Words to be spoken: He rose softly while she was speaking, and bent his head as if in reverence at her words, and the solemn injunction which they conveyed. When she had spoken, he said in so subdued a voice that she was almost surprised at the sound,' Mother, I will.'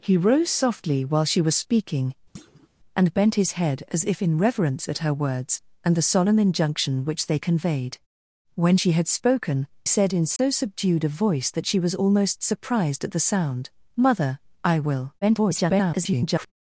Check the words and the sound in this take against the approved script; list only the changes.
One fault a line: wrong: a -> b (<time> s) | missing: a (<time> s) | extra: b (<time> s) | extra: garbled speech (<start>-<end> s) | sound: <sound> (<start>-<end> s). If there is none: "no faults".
sound: thud (2.3-2.7 s)
missing: he (9.7 s)
sound: dropout (10.4-10.4 s)
extra: garbled speech (15.2-16.5 s)